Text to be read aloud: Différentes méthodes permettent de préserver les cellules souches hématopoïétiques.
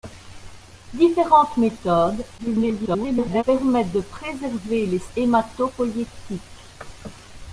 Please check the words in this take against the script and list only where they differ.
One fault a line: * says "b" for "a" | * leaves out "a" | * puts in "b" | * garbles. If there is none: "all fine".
* garbles
* leaves out "cellules souches"